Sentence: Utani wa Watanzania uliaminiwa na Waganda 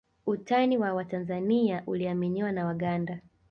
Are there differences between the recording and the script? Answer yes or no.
no